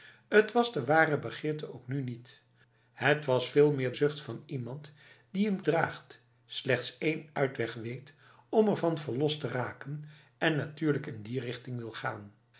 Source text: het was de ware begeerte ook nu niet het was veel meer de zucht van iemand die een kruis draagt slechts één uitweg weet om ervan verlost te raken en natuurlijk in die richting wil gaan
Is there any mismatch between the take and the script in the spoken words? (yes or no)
yes